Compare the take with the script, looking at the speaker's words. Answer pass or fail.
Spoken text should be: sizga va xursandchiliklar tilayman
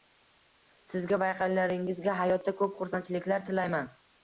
fail